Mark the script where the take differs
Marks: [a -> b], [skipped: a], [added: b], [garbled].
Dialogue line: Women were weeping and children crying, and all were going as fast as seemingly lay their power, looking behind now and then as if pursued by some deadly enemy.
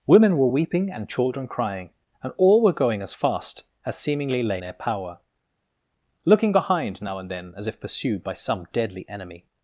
Women were weeping and children crying, and all were going as fast as seemingly lay their power, looking behind now and then as if pursued by some deadly enemy.